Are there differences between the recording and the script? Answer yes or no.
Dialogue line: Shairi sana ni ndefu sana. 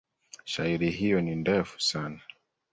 yes